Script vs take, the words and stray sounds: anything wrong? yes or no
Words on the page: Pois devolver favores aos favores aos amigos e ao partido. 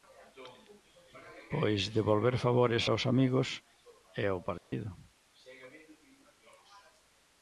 yes